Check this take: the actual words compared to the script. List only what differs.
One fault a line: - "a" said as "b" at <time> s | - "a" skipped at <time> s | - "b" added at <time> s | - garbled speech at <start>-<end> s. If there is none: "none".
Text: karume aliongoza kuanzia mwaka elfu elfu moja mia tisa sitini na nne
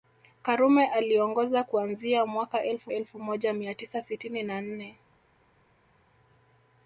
none